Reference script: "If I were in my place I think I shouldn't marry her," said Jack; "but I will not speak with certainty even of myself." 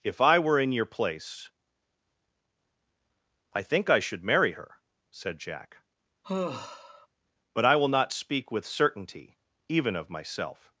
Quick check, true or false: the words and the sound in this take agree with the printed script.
false